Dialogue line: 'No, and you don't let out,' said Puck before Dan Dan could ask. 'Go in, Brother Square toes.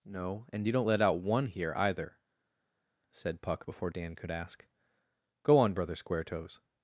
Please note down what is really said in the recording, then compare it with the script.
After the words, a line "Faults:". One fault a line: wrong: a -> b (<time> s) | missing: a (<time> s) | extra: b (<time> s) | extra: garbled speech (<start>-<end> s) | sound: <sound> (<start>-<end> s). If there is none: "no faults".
'No, and you don't let out one here, either,' said Puck before Dan could ask. 'Go on, Brother Square toes.
Faults:
extra: one here either (1.2 s)
missing: Dan (4.2 s)
wrong: in -> on (5.6 s)